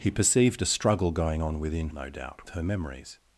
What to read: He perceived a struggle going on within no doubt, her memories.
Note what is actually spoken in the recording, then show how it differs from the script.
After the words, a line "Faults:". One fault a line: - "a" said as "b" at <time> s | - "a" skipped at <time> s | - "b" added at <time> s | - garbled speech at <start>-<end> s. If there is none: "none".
He perceived a struggle going on within no doubt, her memories.
Faults:
none